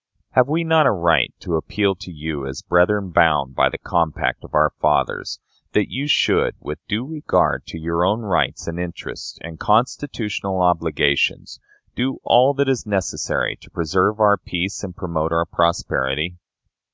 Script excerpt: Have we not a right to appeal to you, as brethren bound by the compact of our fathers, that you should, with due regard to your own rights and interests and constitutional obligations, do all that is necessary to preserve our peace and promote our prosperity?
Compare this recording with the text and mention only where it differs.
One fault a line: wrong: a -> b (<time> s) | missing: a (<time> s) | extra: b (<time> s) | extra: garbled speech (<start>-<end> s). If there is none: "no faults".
no faults